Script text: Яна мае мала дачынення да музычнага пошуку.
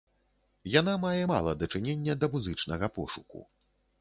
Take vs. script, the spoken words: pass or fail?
pass